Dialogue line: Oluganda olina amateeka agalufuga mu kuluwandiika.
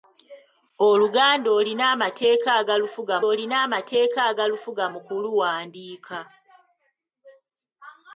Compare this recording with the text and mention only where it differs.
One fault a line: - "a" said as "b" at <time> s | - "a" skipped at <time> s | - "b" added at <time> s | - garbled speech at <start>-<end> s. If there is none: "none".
- "olina amateeka agalufuga" added at 3.3 s